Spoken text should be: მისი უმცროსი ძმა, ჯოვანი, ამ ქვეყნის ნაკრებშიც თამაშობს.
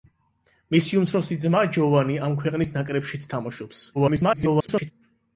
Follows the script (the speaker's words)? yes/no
no